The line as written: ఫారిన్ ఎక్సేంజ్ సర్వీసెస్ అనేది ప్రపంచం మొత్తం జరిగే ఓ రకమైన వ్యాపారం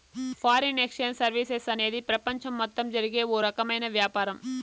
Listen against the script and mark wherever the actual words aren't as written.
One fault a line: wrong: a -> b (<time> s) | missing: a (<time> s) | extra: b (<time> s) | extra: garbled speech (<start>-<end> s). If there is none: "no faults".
no faults